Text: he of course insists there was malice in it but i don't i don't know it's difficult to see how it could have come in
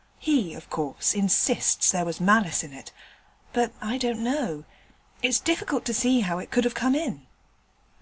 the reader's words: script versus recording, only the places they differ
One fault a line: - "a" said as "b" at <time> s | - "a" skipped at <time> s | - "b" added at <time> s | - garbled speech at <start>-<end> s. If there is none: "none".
- "i don't" skipped at 4.2 s